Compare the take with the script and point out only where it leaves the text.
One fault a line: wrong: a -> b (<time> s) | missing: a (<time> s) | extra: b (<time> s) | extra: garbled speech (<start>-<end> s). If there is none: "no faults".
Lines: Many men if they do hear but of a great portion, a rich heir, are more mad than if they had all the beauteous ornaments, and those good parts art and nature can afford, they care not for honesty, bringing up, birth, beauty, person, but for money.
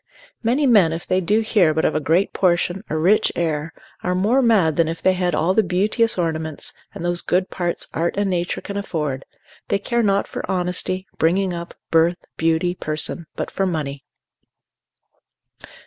no faults